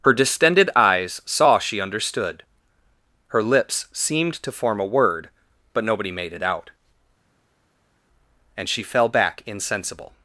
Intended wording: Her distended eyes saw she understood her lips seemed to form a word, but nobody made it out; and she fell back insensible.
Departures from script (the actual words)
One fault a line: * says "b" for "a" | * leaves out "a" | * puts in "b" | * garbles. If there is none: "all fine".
all fine